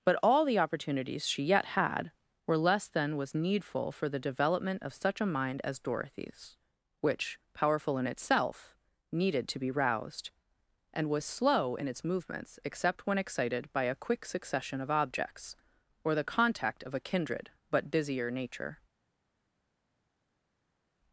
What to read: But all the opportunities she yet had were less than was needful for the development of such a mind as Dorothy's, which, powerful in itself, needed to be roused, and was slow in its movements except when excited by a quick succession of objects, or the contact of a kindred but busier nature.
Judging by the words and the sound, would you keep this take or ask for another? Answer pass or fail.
pass